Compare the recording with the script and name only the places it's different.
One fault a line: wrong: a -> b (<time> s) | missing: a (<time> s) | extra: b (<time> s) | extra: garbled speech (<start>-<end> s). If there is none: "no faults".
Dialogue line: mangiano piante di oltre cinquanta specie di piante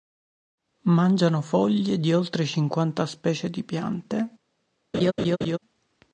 wrong: piante -> foglie (1.4 s)